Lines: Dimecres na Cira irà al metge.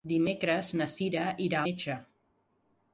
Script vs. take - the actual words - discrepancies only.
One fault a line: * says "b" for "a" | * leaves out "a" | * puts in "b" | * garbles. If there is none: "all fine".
* leaves out "al"